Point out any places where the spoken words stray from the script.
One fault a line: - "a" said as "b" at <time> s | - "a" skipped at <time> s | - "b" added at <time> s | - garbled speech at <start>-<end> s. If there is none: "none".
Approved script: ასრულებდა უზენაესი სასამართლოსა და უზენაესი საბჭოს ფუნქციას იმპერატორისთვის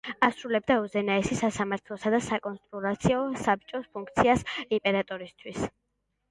- "უზენაესი" said as "საკონსულტაციო" at 2.3 s